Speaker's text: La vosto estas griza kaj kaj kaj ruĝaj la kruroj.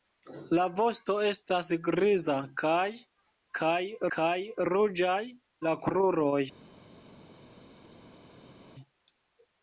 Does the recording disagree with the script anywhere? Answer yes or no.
no